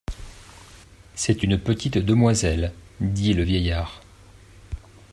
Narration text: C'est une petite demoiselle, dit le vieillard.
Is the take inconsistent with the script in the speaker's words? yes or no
no